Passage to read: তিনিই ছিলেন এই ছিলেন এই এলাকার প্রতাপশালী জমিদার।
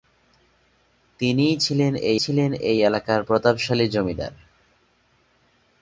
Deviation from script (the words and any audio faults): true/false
false